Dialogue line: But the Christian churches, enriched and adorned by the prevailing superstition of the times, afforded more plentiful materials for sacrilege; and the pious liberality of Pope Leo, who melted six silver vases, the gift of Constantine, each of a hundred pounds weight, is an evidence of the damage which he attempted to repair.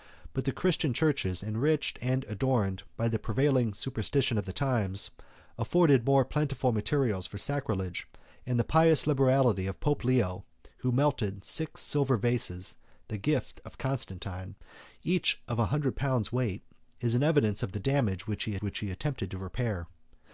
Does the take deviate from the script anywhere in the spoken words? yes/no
yes